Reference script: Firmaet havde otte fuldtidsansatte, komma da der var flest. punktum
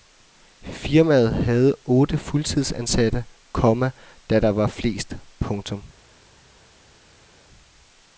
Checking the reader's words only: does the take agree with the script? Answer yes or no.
yes